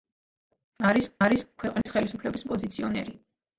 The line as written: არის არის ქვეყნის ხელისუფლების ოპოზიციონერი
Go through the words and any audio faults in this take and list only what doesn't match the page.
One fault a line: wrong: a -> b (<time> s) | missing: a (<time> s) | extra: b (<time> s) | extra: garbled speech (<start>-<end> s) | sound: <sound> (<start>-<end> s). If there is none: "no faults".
sound: dropout (1.8-1.9 s)